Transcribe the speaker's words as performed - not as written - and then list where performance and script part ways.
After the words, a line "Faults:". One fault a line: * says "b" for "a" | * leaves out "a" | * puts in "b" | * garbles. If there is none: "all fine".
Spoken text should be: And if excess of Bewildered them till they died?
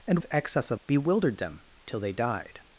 And if excess of Bewildered them till they died?
Faults:
all fine